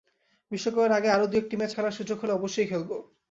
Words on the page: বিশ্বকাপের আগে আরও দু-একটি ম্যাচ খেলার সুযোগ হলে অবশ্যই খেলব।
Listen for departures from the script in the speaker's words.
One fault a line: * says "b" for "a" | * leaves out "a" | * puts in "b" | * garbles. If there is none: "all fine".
all fine